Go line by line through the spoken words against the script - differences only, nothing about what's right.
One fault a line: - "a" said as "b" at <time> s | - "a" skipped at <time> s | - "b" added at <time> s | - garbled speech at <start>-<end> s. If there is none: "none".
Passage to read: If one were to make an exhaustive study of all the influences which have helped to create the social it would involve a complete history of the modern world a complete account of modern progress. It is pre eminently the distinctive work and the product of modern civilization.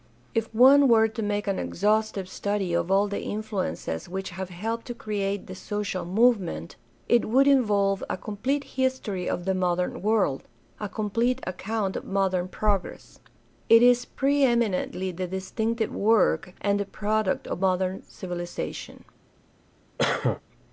- "movement" added at 6.1 s